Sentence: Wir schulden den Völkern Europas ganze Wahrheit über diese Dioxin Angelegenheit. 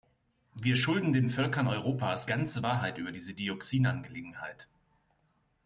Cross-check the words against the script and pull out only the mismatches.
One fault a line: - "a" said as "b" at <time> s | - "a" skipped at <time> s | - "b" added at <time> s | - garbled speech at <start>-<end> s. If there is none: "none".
none